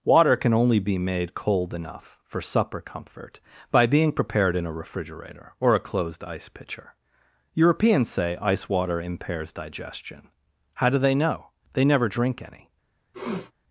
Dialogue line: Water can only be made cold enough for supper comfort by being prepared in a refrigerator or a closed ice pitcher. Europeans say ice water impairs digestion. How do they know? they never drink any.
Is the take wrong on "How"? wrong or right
right